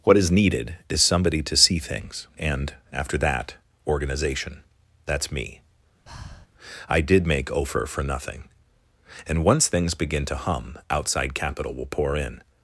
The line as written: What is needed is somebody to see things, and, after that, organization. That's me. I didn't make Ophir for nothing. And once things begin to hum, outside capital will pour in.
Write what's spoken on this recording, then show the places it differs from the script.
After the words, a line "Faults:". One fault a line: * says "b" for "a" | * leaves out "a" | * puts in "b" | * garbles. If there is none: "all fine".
What is needed is somebody to see things, and, after that, organization. That's me. I did make Ophir for nothing. And once things begin to hum, outside capital will pour in.
Faults:
* says "did" for "didn't"